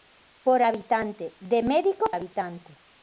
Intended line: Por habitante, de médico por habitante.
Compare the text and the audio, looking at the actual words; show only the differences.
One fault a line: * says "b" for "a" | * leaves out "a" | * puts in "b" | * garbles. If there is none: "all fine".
* leaves out "por"